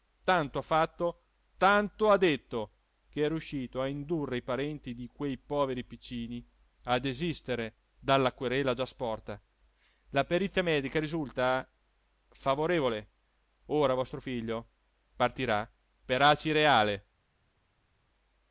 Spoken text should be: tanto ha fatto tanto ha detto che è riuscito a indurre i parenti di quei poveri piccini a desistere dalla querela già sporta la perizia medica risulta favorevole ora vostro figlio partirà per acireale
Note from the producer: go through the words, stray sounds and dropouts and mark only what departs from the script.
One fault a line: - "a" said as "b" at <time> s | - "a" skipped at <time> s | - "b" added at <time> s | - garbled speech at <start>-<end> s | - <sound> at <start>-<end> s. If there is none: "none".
none